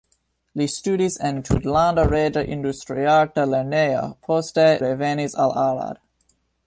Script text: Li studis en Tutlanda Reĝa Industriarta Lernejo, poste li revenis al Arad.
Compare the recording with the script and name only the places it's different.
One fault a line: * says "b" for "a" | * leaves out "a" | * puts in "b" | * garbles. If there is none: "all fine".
* leaves out "li"